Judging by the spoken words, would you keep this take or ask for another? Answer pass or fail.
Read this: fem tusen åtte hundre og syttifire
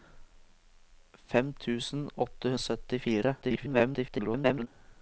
fail